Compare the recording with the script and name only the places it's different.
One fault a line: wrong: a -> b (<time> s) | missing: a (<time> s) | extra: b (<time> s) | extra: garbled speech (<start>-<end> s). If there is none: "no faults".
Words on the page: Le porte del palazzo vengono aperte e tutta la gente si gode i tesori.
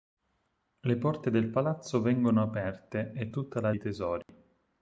missing: gente si gode (3.8 s)